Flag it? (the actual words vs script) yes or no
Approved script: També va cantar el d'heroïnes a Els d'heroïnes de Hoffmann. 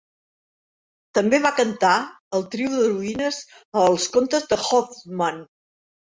yes